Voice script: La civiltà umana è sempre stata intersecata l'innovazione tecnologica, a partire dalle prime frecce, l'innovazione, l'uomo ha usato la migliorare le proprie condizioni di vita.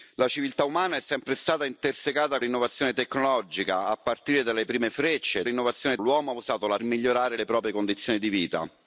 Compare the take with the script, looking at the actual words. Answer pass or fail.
pass